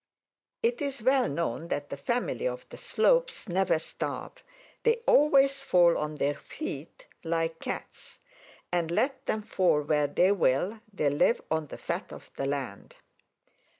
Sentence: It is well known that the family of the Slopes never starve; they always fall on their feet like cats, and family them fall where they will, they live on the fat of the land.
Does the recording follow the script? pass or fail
fail